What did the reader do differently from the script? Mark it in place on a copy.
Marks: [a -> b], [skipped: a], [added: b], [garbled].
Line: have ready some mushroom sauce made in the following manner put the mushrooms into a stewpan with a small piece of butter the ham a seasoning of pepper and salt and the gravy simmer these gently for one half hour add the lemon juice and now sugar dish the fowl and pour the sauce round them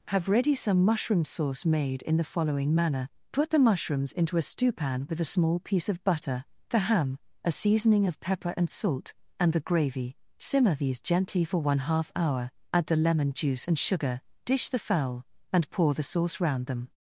have ready some mushroom sauce made in the following manner put the mushrooms into a stewpan with a small piece of butter the ham a seasoning of pepper and salt and the gravy simmer these gently for one half hour add the lemon juice and [skipped: now] sugar dish the fowl and pour the sauce round them